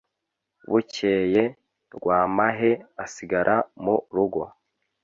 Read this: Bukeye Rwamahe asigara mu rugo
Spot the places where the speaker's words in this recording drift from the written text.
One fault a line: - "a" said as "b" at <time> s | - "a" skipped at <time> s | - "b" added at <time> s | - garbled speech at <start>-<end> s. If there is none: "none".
none